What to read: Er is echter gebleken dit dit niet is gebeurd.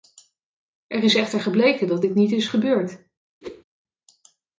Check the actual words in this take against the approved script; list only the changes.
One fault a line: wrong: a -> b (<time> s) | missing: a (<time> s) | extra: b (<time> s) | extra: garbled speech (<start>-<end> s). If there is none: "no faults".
wrong: dit -> dat (1.9 s)